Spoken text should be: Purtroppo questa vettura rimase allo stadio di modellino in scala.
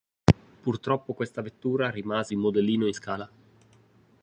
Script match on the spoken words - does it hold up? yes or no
no